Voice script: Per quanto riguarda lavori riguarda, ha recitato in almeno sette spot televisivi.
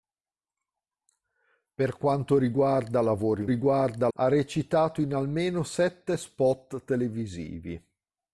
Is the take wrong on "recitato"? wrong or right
right